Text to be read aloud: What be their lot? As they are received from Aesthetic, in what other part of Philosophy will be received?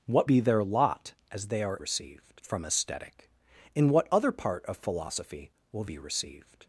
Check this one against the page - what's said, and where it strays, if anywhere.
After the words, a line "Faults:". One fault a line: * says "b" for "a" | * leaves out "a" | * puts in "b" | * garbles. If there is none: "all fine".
What be their lot? As they are received from Aesthetic, in what other part of Philosophy will be received?
Faults:
all fine